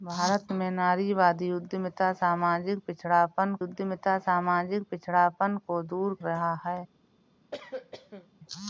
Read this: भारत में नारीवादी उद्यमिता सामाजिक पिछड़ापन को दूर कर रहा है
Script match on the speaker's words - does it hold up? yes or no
no